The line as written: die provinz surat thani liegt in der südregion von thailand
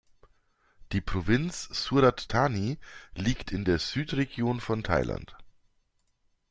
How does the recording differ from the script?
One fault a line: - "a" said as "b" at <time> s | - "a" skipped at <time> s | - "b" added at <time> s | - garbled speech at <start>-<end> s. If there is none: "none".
none